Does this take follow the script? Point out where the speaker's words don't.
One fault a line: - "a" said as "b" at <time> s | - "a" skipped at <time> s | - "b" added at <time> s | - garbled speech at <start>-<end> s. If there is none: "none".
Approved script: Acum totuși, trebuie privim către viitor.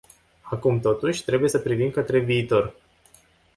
- "să" added at 1.5 s